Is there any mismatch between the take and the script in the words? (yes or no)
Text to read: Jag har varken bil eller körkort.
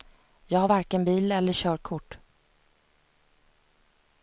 no